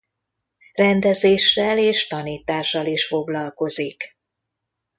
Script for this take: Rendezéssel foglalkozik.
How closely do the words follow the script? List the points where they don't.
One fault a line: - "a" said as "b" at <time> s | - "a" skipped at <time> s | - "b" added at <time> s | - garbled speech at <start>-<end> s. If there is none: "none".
- "és tanítással is" added at 1.8 s